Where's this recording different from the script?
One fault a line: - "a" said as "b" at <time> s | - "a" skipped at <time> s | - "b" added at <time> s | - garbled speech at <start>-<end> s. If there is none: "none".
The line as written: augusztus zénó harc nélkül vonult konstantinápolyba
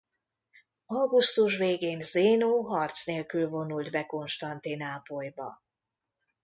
- "végén" added at 1.6 s
- "be" added at 3.9 s